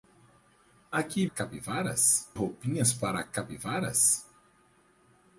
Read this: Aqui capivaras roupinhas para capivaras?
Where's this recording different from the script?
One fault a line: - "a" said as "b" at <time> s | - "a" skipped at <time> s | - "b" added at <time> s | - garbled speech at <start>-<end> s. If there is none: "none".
none